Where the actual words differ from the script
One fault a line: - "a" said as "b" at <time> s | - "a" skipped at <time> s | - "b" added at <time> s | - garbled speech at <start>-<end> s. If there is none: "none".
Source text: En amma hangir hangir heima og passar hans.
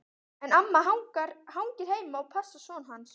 - "hangir" skipped at 1.9 s
- "son" added at 2.6 s